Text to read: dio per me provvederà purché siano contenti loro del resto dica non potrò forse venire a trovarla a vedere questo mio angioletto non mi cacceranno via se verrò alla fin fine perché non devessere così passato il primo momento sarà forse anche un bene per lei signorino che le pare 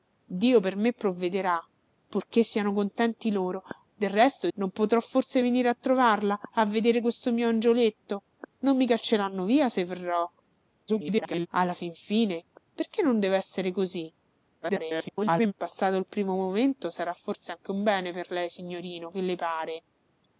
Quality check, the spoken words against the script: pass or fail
fail